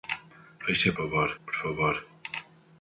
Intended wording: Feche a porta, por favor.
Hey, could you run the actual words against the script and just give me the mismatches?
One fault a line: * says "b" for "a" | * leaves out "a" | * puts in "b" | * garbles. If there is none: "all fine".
* says "favor" for "porta"